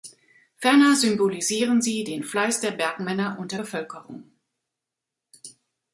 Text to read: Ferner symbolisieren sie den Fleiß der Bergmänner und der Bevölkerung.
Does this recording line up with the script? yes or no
yes